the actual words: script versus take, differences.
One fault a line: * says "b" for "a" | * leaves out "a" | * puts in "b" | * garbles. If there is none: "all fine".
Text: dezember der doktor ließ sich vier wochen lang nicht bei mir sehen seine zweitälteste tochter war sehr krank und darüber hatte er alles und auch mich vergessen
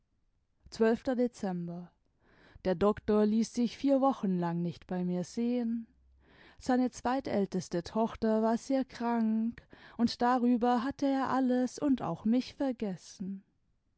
all fine